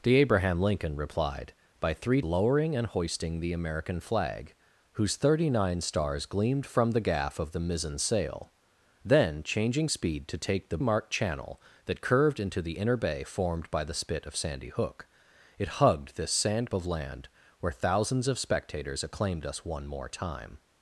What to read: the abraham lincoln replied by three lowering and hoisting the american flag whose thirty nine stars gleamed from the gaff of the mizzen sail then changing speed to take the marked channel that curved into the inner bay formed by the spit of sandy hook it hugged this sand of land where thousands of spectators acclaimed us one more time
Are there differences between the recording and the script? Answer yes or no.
no